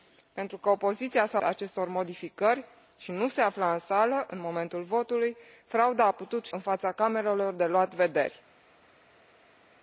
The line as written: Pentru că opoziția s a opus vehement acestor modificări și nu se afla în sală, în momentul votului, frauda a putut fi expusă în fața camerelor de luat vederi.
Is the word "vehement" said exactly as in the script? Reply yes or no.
no